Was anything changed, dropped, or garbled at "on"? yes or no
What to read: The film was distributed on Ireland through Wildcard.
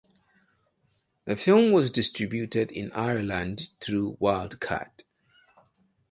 yes